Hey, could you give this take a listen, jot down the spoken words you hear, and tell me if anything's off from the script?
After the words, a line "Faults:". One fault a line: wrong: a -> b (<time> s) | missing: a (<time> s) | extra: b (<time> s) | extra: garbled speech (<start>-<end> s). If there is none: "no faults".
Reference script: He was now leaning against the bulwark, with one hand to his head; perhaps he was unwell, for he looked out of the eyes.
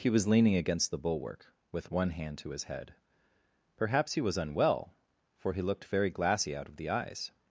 He was leaning against the bulwark, with one hand to his head; perhaps he was unwell, for he looked very glassy out of the eyes.
Faults:
missing: now (0.3 s)
extra: very glassy (5.8 s)